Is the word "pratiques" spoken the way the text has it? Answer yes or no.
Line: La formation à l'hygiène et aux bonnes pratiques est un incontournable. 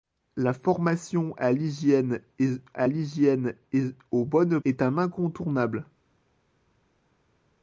no